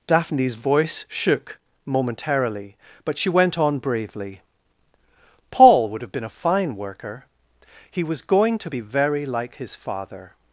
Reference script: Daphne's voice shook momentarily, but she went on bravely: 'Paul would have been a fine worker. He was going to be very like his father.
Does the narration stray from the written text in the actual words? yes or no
no